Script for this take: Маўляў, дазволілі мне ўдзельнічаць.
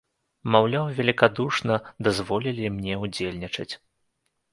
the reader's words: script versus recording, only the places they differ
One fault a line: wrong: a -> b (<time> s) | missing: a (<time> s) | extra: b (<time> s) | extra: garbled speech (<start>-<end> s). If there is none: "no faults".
extra: велікадушна (1.0 s)